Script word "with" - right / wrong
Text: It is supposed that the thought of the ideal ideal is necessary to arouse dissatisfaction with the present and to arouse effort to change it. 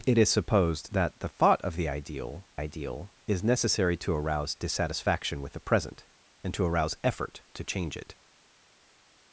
right